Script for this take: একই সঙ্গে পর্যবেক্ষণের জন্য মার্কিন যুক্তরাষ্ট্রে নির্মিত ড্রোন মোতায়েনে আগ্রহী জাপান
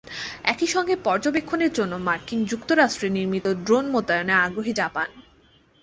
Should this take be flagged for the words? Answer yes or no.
no